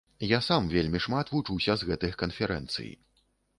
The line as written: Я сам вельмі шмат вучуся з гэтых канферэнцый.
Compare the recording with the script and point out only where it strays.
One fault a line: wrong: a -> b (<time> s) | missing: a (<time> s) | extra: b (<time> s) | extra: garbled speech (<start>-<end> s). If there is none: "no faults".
no faults